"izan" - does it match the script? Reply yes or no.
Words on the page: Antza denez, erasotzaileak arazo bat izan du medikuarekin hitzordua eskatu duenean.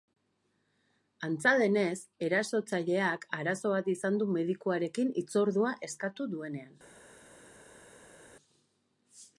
yes